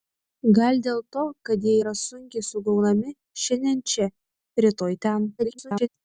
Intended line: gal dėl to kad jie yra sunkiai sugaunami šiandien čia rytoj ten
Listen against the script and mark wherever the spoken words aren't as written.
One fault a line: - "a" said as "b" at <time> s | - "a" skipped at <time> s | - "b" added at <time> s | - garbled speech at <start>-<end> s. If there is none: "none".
- garbled speech at 5.4-5.9 s